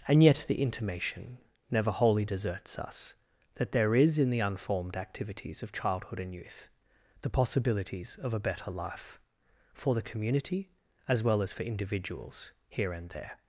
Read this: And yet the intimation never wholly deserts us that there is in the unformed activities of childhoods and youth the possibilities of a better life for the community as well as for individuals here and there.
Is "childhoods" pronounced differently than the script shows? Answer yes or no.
yes